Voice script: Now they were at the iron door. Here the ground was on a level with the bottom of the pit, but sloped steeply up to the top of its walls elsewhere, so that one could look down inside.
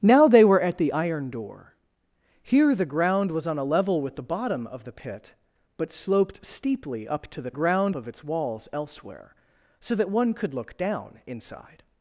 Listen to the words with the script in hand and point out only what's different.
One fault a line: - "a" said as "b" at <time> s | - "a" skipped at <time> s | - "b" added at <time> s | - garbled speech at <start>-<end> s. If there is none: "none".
- "top" said as "ground" at 7.5 s